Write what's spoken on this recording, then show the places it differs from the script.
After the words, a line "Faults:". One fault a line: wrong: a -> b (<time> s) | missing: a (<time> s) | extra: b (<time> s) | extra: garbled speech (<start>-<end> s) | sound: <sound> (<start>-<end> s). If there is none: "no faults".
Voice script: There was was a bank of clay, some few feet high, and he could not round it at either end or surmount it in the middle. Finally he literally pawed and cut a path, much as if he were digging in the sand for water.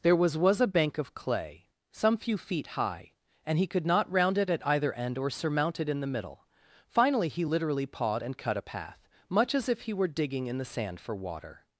There was was a bank of clay, some few feet high, and he could not round it at either end or surmount it in the middle. Finally he literally pawed and cut a path, much as if he were digging in the sand for water.
Faults:
no faults